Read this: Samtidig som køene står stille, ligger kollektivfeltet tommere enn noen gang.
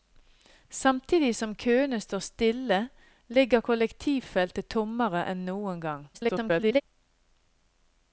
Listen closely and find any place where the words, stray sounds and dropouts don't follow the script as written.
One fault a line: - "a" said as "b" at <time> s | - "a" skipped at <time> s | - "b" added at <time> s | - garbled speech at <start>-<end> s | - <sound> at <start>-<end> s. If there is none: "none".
- garbled speech at 6.1-6.8 s